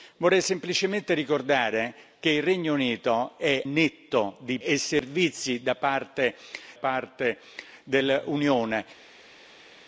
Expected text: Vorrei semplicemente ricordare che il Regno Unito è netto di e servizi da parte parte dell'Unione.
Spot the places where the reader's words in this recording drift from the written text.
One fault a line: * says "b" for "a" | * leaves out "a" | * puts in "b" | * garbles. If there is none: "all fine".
all fine